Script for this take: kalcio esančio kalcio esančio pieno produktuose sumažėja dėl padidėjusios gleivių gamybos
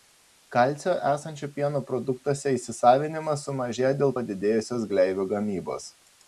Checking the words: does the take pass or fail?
fail